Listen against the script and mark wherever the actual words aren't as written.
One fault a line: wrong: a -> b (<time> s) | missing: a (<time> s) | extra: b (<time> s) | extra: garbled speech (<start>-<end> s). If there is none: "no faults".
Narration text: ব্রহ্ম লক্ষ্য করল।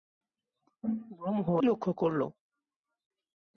no faults